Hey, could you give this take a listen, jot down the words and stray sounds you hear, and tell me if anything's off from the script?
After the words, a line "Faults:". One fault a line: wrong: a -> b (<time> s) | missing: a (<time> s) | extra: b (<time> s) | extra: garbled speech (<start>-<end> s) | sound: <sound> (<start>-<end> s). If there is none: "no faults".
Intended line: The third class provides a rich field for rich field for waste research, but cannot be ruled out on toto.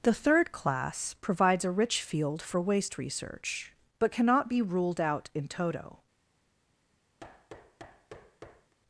The third class provides a rich field for waste research, but cannot be ruled out in toto.
Faults:
missing: rich field for (2.6 s)
wrong: on -> in (5.3 s)
sound: thud (7.2-8.7 s)